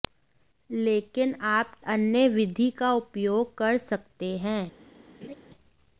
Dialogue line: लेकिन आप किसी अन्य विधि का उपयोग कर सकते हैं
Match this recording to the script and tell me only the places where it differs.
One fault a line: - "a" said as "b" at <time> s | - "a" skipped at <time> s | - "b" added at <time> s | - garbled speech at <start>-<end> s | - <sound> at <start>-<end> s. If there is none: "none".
- "किसी" skipped at 1.8 s
- laugh at 5.2-5.3 s